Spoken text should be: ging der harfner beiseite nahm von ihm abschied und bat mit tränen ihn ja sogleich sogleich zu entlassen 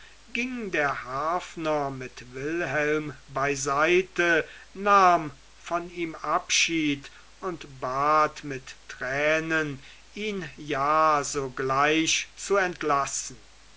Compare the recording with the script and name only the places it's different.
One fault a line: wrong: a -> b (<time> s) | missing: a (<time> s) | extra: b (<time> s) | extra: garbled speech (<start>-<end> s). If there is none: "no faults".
extra: mit wilhelm (1.9 s)
missing: sogleich (12.3 s)